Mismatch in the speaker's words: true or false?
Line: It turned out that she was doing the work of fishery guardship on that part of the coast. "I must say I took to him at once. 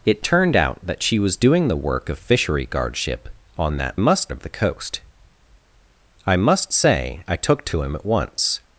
true